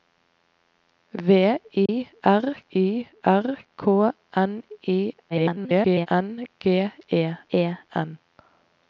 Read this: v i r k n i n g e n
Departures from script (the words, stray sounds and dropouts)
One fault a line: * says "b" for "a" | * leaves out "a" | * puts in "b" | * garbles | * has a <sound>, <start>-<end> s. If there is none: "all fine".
* has a dropout, 1.9-1.9 s
* puts in "i r"
* garbles
* puts in "e"